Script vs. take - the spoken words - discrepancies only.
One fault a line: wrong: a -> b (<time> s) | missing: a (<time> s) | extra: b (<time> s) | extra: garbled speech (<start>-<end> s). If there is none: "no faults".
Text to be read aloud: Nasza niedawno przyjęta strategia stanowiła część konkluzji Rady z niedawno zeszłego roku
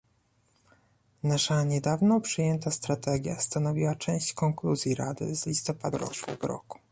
wrong: niedawno -> listopada (5.5 s)